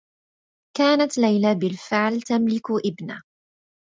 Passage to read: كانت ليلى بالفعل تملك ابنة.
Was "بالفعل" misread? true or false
false